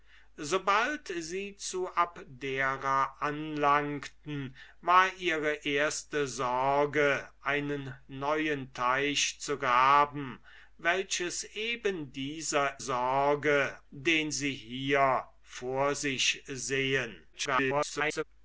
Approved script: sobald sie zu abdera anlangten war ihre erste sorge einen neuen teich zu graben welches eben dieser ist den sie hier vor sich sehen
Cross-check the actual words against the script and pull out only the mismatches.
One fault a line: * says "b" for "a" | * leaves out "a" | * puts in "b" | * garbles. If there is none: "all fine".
* says "sorge" for "ist"
* garbles